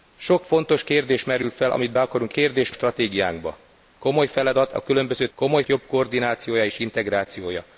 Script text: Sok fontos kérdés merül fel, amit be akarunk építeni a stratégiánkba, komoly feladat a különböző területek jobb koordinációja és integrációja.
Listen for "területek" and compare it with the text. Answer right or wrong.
wrong